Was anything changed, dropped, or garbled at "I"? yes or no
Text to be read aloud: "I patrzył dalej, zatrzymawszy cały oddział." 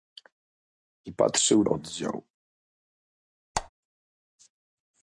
no